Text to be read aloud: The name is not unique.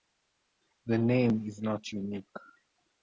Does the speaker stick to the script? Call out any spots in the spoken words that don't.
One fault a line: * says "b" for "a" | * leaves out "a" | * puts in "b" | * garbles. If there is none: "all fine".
all fine